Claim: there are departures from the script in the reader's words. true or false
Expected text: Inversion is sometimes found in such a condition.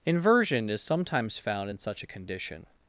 false